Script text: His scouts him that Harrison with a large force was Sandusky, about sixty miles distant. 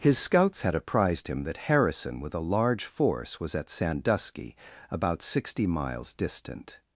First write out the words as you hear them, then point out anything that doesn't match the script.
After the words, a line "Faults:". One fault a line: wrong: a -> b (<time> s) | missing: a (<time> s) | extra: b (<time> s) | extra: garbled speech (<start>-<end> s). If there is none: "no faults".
His scouts had apprised him that Harrison with a large force was at Sandusky, about sixty miles distant.
Faults:
extra: had apprised (0.6 s)
extra: at (3.5 s)